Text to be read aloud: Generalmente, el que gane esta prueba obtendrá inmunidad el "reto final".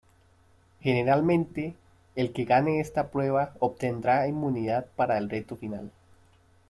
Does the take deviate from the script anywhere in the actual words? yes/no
yes